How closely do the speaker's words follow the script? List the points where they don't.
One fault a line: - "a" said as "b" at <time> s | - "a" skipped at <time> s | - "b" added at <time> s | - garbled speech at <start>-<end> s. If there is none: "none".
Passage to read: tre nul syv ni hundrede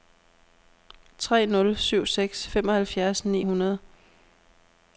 - "seks femoghalvfjerds" added at 2.0 s